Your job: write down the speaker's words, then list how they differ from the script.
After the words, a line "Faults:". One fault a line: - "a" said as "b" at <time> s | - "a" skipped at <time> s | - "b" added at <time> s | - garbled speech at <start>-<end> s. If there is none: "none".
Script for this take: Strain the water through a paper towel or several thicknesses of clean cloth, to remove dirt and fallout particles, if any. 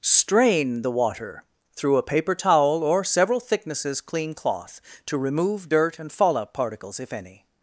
Strain the water through a paper towel or several thicknesses clean cloth, to remove dirt and fallout particles, if any.
Faults:
- "of" skipped at 4.0 s